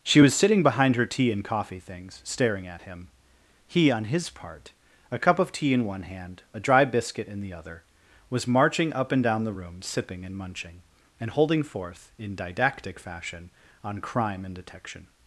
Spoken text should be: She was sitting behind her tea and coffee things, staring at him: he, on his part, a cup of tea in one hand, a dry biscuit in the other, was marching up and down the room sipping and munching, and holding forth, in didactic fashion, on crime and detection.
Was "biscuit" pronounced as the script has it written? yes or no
yes